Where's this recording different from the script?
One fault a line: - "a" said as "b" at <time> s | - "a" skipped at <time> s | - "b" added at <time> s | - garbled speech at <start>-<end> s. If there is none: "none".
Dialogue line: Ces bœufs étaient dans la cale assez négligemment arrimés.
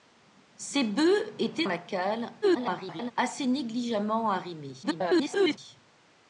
- "dans" skipped at 1.7 s
- garbled speech at 2.4-3.1 s
- garbled speech at 4.8-5.6 s